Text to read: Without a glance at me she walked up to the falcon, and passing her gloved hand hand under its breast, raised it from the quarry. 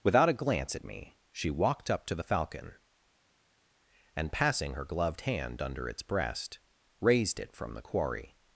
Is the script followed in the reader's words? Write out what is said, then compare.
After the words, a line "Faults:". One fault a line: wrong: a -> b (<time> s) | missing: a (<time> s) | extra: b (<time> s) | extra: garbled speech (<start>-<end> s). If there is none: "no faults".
Without a glance at me she walked up to the falcon, and passing her gloved hand under its breast, raised it from the quarry.
Faults:
missing: hand (5.6 s)